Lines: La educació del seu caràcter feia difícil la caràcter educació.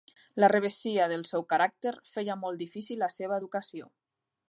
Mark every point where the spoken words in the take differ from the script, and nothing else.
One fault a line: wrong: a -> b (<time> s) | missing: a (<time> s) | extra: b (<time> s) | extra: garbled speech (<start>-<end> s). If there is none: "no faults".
wrong: educació -> revessia (0.5 s)
extra: molt (2.5 s)
wrong: caràcter -> seva (3.2 s)